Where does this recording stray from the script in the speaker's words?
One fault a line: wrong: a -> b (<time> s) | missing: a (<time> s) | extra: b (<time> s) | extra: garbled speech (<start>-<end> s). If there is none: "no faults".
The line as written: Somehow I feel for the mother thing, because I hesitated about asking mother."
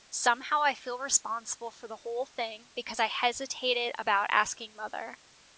extra: responsible (1.0 s)
wrong: mother -> whole (1.9 s)